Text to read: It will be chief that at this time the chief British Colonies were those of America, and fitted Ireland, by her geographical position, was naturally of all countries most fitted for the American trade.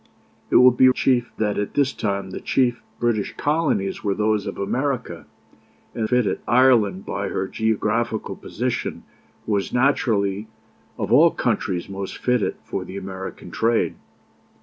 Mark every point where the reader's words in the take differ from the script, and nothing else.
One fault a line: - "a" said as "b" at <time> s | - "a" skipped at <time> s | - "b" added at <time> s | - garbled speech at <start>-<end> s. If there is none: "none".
none